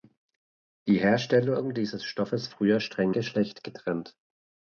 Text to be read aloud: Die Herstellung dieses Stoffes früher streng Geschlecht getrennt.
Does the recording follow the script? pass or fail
pass